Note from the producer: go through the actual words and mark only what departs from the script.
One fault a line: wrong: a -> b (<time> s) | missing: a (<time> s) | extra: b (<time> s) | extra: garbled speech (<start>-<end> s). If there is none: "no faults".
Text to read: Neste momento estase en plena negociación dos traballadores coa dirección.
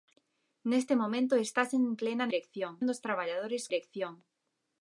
wrong: negociación -> dirección (2.3 s)
missing: coa (3.6 s)